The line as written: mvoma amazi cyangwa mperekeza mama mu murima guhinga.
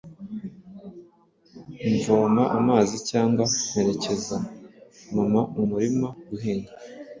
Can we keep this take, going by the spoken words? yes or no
yes